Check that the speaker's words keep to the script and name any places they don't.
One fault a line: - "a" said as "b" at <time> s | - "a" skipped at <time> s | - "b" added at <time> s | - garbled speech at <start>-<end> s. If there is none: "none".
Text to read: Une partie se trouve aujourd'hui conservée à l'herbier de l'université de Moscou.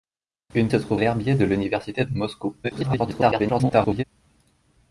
- "partie" skipped at 0.7 s
- "aujourd'hui conservée à" skipped at 1.0 s
- garbled speech at 2.6-4.0 s